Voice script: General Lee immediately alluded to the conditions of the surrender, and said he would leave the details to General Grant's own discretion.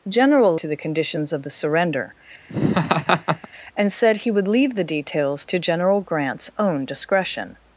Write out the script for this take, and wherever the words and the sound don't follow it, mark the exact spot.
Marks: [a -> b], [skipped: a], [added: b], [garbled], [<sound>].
General [skipped: Lee immediately alluded] to the conditions of the surrender, [laugh] and said he would leave the details to General Grant's own discretion.